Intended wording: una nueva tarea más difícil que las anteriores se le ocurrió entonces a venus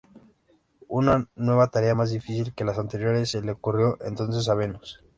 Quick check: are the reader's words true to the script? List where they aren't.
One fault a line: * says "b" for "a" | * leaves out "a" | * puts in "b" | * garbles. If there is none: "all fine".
all fine